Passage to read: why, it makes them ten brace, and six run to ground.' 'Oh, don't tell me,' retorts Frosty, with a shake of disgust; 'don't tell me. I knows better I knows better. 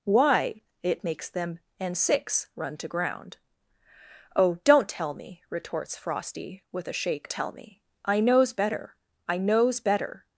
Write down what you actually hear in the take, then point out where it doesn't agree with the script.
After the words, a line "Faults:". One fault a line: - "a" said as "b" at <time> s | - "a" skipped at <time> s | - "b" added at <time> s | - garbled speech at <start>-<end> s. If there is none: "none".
why, it makes them and six run to ground.' 'Oh, don't tell me,' retorts Frosty, with a shake tell me. I knows better I knows better.
Faults:
- "ten brace" skipped at 1.6 s
- "of disgust don't" skipped at 7.3 s